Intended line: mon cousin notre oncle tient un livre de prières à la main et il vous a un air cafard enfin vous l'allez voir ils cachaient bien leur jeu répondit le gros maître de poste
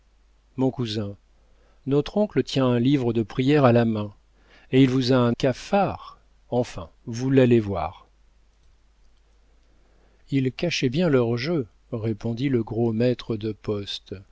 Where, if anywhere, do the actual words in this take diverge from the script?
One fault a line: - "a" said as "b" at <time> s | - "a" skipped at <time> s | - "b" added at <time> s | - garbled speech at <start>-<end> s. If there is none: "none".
- "air" skipped at 5.4 s